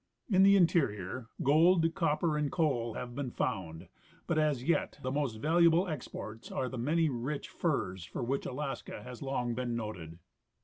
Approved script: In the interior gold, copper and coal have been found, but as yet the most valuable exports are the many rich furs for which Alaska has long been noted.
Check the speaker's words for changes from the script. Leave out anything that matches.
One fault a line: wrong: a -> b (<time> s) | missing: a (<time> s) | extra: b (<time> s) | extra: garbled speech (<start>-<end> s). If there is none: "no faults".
no faults